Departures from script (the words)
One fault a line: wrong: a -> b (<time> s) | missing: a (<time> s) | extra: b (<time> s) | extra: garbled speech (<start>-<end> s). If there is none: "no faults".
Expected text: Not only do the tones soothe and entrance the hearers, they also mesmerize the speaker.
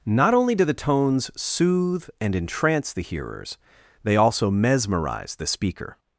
no faults